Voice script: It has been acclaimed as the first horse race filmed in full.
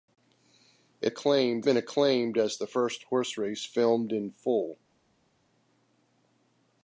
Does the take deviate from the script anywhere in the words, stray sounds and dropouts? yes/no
yes